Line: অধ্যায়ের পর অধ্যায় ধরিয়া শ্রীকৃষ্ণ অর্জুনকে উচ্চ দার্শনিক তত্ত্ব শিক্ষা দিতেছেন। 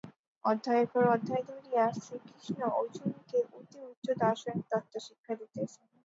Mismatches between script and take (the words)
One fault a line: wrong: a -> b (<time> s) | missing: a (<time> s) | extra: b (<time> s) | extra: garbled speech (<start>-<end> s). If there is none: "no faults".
extra: অতি (3.5 s)